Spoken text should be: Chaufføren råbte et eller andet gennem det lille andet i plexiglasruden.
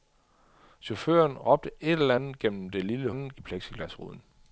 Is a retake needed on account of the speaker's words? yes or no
no